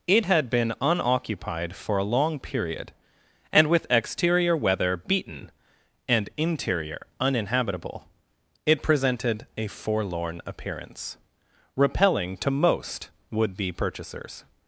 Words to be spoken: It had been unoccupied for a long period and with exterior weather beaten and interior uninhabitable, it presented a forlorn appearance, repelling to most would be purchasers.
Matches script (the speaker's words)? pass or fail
pass